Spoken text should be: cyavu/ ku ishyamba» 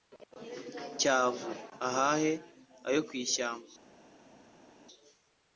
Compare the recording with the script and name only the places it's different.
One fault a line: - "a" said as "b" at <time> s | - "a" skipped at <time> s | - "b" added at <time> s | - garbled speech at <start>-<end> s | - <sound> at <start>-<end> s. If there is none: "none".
- "ahahe ayo" added at 1.9 s